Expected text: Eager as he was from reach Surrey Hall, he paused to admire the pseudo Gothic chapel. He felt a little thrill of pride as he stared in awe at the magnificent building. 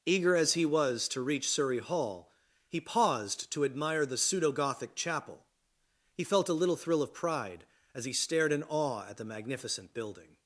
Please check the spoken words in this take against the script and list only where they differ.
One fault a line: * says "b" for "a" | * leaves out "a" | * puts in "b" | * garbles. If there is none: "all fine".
* says "to" for "from"